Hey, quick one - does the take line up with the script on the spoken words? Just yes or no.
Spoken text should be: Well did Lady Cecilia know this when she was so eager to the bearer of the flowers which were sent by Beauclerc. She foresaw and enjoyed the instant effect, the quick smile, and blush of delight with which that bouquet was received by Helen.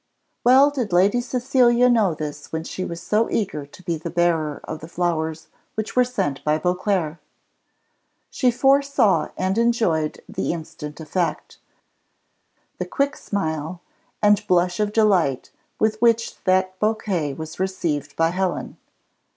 no